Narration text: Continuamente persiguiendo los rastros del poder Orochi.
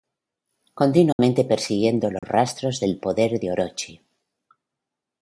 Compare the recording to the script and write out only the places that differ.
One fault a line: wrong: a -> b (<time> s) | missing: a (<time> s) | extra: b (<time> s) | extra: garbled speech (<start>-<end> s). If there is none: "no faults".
extra: de (3.4 s)